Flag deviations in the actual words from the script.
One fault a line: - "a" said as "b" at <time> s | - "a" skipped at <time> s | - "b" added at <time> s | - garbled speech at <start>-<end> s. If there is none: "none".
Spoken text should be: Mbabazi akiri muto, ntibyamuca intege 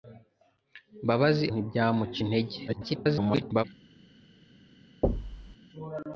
- "akiri muto" skipped at 1.4 s
- garbled speech at 2.7-3.6 s